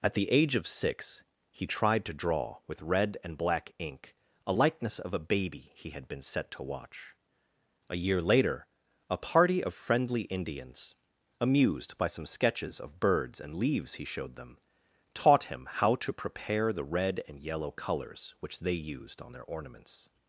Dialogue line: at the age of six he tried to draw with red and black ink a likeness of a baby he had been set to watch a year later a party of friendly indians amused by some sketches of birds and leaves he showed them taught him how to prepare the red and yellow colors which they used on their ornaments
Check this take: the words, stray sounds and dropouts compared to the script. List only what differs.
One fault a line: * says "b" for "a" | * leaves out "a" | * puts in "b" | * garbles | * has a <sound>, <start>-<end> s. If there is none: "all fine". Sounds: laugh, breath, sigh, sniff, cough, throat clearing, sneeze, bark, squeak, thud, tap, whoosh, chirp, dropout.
all fine